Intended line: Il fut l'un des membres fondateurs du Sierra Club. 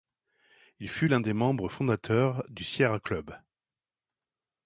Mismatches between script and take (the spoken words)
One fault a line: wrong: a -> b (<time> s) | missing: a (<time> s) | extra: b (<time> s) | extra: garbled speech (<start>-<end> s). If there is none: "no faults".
no faults